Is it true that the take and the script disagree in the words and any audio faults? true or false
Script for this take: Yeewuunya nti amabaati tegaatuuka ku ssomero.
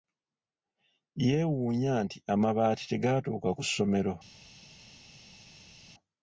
false